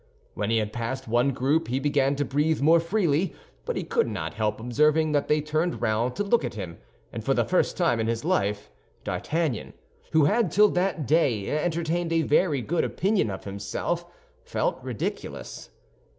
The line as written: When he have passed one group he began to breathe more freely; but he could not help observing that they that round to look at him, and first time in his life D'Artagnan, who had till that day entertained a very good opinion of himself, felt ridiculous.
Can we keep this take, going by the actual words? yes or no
no